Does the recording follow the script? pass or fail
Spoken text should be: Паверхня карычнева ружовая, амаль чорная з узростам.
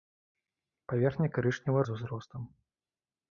fail